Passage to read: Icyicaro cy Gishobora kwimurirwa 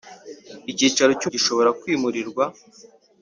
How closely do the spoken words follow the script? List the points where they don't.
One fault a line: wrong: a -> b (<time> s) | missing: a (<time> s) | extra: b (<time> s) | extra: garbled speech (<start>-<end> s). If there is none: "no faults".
no faults